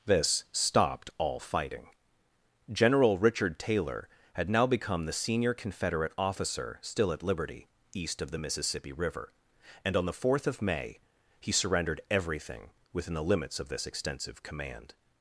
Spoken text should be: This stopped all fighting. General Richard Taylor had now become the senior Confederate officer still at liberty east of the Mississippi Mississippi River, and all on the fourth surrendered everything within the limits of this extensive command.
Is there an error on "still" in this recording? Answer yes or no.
no